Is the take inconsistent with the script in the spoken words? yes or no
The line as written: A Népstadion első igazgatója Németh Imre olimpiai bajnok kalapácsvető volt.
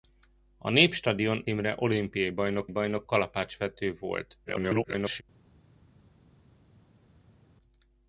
yes